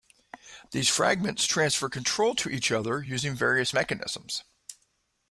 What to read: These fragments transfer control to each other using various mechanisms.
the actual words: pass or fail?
pass